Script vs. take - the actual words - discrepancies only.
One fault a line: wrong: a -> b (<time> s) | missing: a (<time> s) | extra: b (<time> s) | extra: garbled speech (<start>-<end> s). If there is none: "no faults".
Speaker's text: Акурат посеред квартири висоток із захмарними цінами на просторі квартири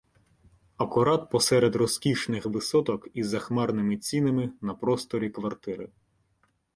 wrong: квартири -> розкішних (1.8 s)